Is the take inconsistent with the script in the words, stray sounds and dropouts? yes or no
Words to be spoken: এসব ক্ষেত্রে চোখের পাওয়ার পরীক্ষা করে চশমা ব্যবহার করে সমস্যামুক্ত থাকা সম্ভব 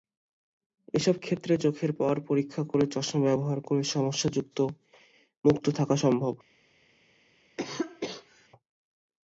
yes